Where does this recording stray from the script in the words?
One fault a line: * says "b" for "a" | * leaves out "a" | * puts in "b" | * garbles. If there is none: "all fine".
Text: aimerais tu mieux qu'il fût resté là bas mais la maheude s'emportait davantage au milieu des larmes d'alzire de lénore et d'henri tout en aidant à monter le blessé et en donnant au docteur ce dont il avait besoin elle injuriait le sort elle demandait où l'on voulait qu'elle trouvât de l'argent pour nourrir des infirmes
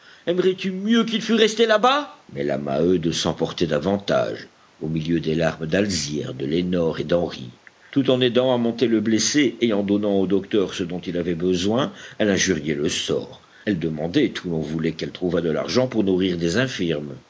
all fine